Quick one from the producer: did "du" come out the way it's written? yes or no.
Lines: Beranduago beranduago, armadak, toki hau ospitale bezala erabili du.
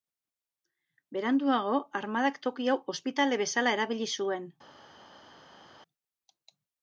no